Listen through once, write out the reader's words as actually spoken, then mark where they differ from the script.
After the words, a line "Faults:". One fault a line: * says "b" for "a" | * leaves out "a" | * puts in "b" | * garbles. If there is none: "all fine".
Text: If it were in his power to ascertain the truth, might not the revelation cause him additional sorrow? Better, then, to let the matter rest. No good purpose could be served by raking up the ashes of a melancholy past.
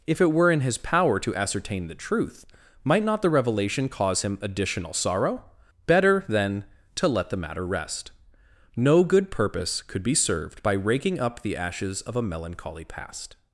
If it were in his power to ascertain the truth, might not the revelation cause him additional sorrow? Better, then, to let the matter rest. No good purpose could be served by raking up the ashes of a melancholy past.
Faults:
all fine